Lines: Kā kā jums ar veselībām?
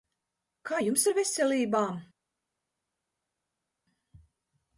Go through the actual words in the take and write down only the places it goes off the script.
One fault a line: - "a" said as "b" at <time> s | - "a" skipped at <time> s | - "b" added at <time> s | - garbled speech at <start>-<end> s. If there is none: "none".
- "kā" skipped at 0.8 s